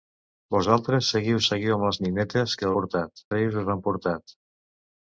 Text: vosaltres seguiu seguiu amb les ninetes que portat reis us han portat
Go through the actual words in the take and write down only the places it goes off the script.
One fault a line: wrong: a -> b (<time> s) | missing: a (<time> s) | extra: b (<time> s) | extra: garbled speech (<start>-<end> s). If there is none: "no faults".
no faults